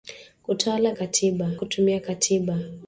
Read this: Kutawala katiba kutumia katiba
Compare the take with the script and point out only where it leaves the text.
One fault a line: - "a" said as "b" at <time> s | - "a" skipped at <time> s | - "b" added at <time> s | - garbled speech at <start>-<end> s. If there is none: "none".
none